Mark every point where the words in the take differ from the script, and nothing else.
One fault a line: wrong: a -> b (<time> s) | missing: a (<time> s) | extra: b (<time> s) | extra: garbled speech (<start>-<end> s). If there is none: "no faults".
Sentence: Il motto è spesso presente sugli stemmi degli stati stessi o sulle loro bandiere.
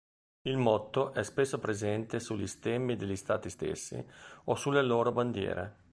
no faults